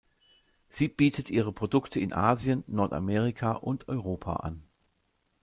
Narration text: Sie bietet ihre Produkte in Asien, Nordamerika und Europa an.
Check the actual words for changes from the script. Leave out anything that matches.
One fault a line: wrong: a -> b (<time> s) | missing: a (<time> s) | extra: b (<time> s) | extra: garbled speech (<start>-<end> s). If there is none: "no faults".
no faults